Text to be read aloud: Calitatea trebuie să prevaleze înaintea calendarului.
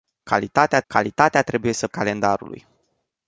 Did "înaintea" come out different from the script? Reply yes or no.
yes